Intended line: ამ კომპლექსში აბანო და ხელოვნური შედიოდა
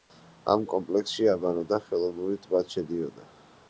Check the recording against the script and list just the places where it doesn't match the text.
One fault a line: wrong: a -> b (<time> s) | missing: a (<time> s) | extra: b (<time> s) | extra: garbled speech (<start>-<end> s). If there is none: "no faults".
extra: ტბაც (2.5 s)